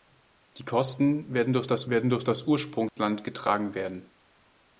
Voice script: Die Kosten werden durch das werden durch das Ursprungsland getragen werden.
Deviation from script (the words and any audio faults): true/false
true